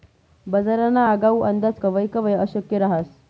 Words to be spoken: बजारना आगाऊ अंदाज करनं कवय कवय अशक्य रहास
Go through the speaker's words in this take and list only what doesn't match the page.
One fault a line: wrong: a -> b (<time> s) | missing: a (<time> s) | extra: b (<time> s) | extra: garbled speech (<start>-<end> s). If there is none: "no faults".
missing: करनं (1.8 s)